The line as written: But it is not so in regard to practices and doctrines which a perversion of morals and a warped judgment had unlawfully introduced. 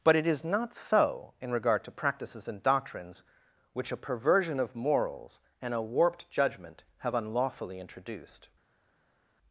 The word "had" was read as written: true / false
false